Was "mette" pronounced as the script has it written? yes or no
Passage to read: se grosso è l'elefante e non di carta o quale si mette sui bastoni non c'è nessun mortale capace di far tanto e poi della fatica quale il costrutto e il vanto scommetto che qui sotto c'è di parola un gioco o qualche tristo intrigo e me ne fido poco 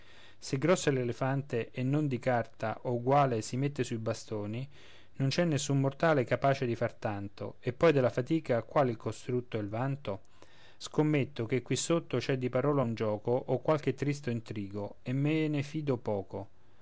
yes